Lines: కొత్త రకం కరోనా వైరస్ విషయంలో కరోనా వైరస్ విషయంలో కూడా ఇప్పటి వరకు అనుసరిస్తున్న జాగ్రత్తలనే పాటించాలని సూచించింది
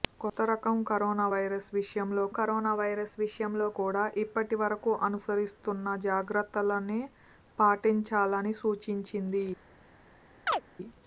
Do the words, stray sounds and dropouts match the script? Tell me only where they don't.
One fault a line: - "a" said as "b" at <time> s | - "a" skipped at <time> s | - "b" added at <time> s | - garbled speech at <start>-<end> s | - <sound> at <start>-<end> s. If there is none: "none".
- chirp at 10.5-10.6 s